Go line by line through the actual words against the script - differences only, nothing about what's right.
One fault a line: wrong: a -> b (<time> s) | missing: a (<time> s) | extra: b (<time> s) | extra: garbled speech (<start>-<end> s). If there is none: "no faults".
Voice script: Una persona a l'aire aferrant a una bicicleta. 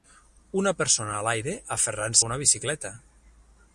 no faults